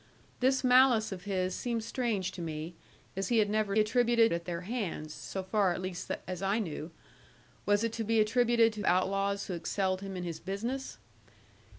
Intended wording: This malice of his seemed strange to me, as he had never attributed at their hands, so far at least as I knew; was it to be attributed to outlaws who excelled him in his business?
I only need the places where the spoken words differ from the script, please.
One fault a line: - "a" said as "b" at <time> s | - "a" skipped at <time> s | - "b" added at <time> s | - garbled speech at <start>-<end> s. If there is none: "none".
none